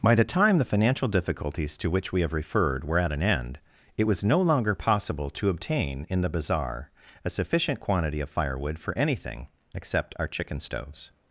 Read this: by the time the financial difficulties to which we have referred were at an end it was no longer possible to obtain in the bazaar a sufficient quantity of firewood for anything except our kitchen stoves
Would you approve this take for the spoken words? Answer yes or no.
no